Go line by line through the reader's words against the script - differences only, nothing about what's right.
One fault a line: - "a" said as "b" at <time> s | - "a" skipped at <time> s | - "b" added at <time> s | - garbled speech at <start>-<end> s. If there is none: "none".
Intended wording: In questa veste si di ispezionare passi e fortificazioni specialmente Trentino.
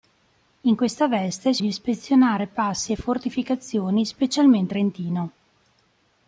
none